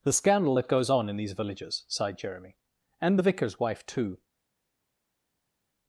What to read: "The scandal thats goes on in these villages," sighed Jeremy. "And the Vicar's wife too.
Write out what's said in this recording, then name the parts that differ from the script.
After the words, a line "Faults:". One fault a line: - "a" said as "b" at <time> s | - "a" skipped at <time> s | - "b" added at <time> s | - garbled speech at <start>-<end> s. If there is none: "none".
"The scandal that goes on in these villages," sighed Jeremy. "And the Vicar's wife too.
Faults:
- "thats" said as "that" at 0.5 s